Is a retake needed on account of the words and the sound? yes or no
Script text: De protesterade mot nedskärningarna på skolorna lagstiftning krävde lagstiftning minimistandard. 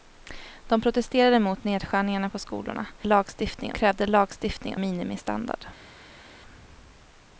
no